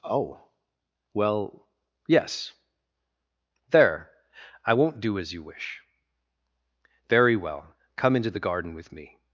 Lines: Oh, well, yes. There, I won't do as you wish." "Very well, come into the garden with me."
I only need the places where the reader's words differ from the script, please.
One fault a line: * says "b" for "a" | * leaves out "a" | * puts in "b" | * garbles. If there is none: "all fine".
all fine